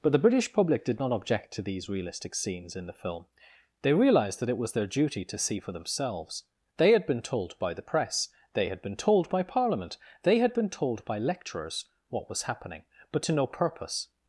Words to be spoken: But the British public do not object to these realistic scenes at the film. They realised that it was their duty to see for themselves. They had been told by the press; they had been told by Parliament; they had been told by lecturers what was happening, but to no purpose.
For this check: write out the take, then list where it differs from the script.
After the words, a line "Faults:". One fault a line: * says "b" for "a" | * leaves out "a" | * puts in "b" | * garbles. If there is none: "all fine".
But the British public did not object to these realistic scenes in the film. They realised that it was their duty to see for themselves. They had been told by the press; they had been told by Parliament; they had been told by lecturers what was happening, but to no purpose.
Faults:
* says "did" for "do"
* says "in" for "at"